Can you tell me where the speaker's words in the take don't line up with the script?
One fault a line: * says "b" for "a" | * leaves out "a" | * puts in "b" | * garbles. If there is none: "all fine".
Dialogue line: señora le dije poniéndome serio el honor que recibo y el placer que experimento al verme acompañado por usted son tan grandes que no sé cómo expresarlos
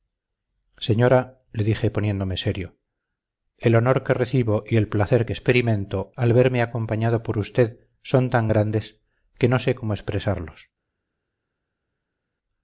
all fine